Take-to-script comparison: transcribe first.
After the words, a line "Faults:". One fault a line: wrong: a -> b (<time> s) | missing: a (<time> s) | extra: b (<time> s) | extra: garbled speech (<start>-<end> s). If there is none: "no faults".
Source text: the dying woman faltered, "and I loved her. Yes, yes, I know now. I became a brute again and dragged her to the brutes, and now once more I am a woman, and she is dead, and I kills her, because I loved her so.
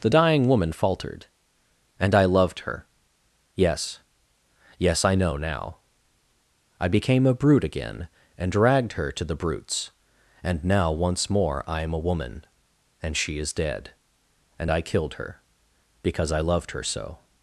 the dying woman faltered, "and I loved her. Yes, yes, I know now. I became a brute again and dragged her to the brutes, and now once more I am a woman, and she is dead, and I killed her, because I loved her so.
Faults:
wrong: kills -> killed (14.8 s)